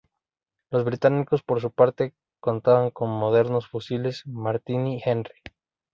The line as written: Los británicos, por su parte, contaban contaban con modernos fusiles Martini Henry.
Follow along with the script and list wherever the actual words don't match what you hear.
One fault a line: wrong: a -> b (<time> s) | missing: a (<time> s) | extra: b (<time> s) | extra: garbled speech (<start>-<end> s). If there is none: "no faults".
missing: contaban (2.9 s)